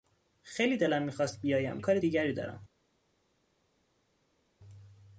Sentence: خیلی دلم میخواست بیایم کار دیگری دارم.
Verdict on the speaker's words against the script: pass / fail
pass